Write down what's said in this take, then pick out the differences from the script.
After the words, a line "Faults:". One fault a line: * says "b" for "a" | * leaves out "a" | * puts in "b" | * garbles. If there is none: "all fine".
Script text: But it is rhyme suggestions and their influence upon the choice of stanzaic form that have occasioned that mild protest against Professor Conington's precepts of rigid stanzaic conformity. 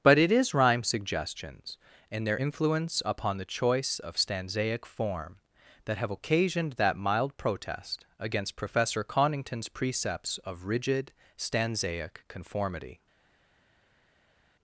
But it is rhyme suggestions and their influence upon the choice of stanzaic form that have occasioned that mild protest against Professor Conington's precepts of rigid stanzaic conformity.
Faults:
all fine